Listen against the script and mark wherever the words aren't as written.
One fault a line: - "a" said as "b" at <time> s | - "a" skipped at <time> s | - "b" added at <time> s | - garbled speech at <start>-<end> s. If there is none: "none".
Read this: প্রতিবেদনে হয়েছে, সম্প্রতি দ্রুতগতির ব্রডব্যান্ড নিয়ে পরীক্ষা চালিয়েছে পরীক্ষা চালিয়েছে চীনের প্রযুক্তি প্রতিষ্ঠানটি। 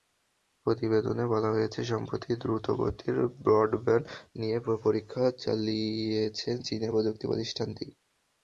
- "বলা" added at 1.3 s
- "পরীক্ষা চালিয়েছে" skipped at 6.5 s